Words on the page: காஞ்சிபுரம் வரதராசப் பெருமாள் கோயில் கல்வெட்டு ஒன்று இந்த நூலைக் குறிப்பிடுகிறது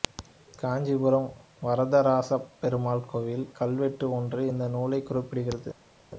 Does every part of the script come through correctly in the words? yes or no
yes